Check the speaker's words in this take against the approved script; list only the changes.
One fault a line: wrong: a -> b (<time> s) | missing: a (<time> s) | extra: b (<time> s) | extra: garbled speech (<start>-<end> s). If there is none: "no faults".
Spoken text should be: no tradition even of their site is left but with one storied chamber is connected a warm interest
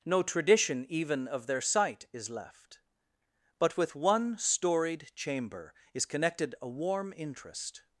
no faults